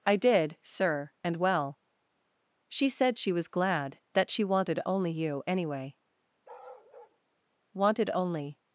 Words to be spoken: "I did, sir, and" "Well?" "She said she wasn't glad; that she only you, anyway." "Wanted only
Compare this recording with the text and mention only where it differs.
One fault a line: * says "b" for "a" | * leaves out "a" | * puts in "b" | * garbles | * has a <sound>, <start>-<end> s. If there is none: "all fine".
* says "was" for "wasn't"
* puts in "wanted"
* has a bark, 6.4-7.2 s